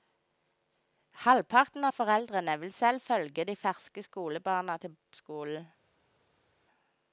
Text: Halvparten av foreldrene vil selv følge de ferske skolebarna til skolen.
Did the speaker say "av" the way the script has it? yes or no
yes